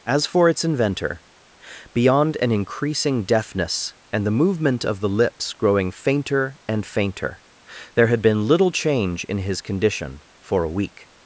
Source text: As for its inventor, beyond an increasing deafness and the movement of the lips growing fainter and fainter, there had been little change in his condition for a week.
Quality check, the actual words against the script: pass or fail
pass